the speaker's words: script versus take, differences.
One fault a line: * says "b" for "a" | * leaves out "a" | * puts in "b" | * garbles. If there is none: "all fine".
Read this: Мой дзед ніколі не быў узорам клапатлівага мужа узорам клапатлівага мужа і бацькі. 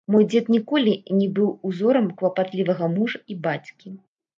* leaves out "узорам клапатлівага мужа"